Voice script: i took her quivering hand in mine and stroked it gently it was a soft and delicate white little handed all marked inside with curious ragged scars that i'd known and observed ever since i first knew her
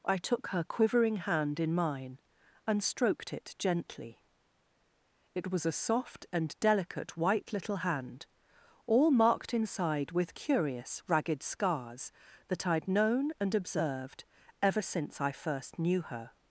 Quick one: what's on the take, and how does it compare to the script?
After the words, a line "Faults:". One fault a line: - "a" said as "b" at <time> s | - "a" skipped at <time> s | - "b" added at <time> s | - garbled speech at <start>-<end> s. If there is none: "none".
i took her quivering hand in mine and stroked it gently it was a soft and delicate white little hand all marked inside with curious ragged scars that i'd known and observed ever since i first knew her
Faults:
- "handed" said as "hand" at 7.8 s